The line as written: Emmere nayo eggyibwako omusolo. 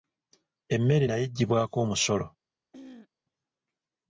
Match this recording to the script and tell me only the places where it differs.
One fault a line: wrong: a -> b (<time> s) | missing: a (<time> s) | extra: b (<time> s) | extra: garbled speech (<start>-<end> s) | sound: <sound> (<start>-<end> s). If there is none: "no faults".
sound: throat clearing (2.7-3.1 s)